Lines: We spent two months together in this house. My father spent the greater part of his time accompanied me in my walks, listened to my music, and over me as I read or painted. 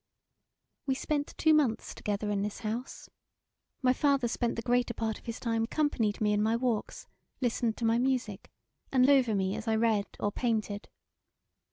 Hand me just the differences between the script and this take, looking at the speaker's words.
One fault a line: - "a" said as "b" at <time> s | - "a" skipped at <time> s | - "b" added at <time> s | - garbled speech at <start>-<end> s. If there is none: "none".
none